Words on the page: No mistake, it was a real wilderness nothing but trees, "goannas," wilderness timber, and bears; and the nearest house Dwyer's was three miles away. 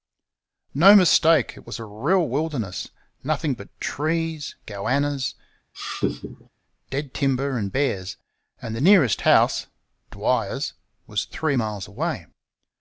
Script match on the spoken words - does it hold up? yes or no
no